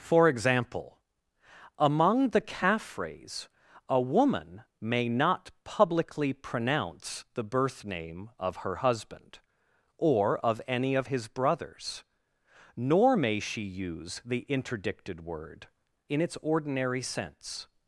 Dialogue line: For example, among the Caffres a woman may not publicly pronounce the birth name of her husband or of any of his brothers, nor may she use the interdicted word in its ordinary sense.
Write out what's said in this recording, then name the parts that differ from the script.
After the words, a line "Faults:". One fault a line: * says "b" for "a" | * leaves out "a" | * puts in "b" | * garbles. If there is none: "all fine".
For example, among the Caffres a woman may not publicly pronounce the birth name of her husband or of any of his brothers, nor may she use the interdicted word in its ordinary sense.
Faults:
all fine